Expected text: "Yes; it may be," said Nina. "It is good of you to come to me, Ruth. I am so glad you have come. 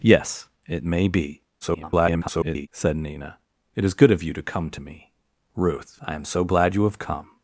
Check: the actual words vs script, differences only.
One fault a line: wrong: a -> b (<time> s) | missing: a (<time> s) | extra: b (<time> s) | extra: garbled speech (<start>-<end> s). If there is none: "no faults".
extra: garbled speech (1.6-2.7 s)